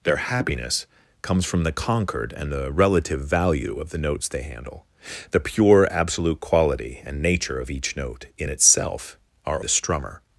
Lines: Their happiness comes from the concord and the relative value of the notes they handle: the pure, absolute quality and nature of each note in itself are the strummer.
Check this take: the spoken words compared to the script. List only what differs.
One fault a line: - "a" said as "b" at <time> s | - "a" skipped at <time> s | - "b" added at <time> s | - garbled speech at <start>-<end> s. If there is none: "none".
none